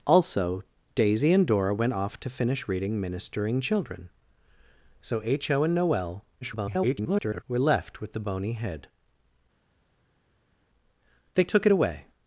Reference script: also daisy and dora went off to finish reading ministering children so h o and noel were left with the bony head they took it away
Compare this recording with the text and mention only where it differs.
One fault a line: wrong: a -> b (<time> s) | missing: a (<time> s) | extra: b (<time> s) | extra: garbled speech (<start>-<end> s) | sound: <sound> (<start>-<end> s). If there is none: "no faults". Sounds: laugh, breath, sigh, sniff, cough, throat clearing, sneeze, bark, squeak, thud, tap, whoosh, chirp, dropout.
extra: garbled speech (6.4-7.4 s)